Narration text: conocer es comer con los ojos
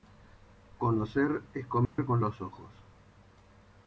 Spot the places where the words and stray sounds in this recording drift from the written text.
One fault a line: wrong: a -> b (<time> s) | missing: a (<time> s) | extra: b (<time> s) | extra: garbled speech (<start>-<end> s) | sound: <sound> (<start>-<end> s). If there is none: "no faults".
sound: dropout (1.9-2.0 s)